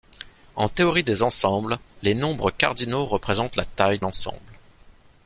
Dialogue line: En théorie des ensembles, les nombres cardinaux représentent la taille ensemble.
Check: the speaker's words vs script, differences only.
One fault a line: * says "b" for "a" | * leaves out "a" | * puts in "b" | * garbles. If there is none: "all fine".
all fine